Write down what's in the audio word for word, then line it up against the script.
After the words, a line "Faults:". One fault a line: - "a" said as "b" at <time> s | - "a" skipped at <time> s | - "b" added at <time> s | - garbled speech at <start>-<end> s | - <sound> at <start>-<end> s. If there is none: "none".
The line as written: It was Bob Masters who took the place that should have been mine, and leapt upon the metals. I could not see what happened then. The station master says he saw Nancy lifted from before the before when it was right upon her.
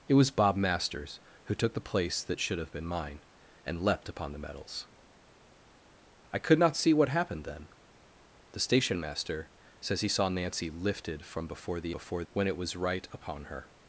It was Bob Masters who took the place that should have been mine, and leapt upon the metals. I could not see what happened then. The station master says he saw Nancy lifted from before the before when it was right upon her.
Faults:
none